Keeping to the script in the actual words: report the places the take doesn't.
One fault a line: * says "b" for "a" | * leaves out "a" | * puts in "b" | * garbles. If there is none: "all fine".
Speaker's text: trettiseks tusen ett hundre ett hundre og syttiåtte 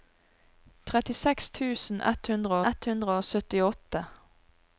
all fine